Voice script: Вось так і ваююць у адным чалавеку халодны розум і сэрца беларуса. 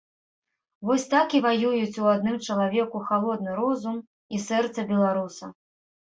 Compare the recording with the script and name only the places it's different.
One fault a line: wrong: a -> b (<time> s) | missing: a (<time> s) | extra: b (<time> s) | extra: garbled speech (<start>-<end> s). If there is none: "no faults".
no faults